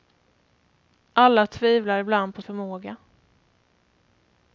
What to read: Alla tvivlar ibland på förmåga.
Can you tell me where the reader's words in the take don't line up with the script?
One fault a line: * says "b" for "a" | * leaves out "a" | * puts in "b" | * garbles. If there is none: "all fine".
all fine